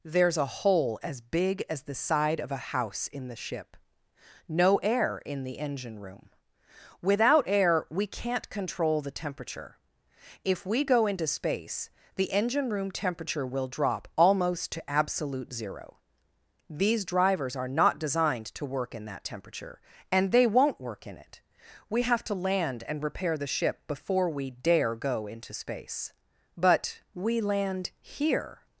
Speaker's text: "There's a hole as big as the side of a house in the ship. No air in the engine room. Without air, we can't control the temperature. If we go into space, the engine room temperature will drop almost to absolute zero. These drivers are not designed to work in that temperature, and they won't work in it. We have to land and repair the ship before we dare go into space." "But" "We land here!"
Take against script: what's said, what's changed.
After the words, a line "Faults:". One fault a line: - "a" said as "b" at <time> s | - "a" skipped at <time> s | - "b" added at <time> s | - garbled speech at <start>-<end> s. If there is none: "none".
"There's a hole as big as the side of a house in the ship. No air in the engine room. Without air, we can't control the temperature. If we go into space, the engine room temperature will drop almost to absolute zero. These drivers are not designed to work in that temperature, and they won't work in it. We have to land and repair the ship before we dare go into space." "But" "We land here!"
Faults:
none